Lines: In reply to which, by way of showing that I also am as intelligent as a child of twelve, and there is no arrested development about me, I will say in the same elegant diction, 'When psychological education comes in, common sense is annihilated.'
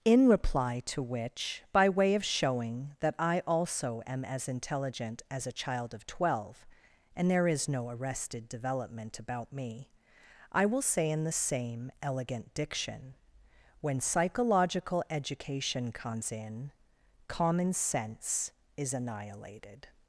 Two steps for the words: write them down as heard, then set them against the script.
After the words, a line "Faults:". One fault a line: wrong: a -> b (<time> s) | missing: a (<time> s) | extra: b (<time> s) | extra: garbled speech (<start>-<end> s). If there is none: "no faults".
In reply to which, by way of showing that I also am as intelligent as a child of twelve, and there is no arrested development about me, I will say in the same elegant diction, 'When psychological education comes in, common sense is annihilated.'
Faults:
no faults